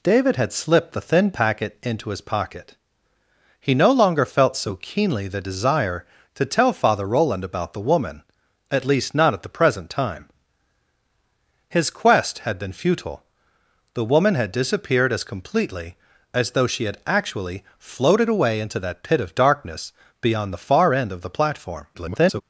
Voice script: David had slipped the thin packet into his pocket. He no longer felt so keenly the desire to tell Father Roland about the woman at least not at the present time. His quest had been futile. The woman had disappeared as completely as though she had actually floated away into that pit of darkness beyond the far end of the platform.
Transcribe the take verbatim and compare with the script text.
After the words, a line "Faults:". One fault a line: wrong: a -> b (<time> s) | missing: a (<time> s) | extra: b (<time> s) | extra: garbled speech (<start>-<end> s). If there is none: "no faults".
David had slipped the thin packet into his pocket. He no longer felt so keenly the desire to tell Father Roland about the woman at least not at the present time. His quest had been futile. The woman had disappeared as completely as though she had actually floated away into that pit of darkness beyond the far end of the platform. [garbled]
Faults:
extra: garbled speech (21.9-22.4 s)